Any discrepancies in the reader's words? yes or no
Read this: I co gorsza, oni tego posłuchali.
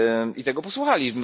yes